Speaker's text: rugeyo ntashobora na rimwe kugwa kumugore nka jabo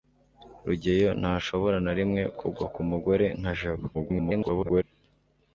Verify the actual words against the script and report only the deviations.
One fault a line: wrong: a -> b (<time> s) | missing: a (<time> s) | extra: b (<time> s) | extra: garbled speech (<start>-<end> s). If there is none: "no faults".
extra: garbled speech (3.9-4.8 s)